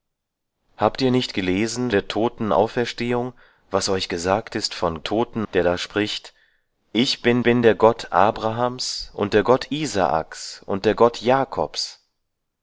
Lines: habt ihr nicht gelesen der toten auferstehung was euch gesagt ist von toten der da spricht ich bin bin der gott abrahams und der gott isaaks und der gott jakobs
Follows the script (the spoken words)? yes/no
yes